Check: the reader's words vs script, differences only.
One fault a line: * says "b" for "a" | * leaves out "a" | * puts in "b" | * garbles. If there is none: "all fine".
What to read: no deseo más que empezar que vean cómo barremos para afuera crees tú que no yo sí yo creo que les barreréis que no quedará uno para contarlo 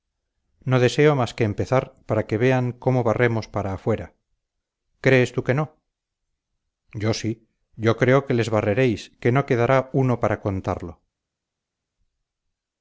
* puts in "para"